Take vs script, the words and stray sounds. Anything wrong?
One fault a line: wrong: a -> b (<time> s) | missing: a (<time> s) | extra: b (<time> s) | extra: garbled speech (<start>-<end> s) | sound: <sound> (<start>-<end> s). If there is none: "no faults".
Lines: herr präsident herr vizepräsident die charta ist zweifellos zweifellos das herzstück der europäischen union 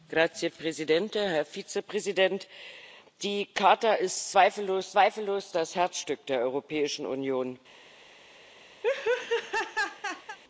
sound: laugh (8.8-10.4 s)